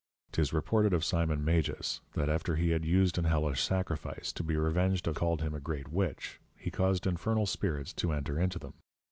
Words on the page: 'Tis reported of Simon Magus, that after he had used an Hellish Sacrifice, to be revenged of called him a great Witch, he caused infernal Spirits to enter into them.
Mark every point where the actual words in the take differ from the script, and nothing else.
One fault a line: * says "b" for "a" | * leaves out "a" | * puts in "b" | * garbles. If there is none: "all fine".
all fine